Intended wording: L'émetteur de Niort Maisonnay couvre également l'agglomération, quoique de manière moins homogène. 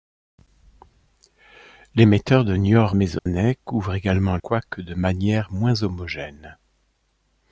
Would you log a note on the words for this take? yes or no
yes